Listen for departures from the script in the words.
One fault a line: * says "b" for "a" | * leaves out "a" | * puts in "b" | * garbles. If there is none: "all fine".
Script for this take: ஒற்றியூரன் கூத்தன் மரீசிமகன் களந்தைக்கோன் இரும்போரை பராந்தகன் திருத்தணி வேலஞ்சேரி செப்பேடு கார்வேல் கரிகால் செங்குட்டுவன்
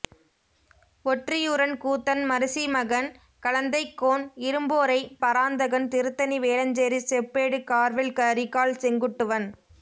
all fine